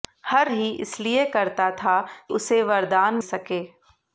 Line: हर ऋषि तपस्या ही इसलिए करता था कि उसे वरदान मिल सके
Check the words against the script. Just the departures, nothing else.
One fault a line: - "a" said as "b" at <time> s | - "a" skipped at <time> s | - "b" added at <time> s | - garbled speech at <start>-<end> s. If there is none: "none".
- "ऋषि तपस्या" skipped at 0.5 s
- "कि" skipped at 2.0 s
- "मिल" skipped at 3.2 s